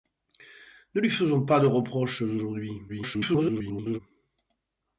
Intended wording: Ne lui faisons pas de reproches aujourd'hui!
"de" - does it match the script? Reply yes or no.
yes